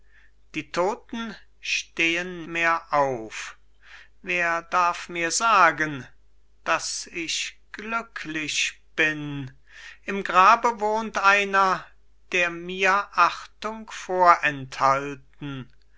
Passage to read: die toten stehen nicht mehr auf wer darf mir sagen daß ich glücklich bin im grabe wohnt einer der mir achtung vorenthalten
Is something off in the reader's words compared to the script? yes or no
yes